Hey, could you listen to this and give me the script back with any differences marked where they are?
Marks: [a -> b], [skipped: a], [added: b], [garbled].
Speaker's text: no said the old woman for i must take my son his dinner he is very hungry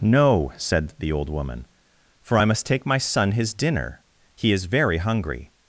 no said the old woman for i must take my son his dinner he is very hungry